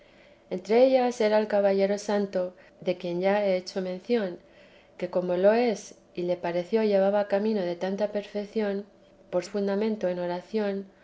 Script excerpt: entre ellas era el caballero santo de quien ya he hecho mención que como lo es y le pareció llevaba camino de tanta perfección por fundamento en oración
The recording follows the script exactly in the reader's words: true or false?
true